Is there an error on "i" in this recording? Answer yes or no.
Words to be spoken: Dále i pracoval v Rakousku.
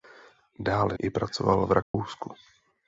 no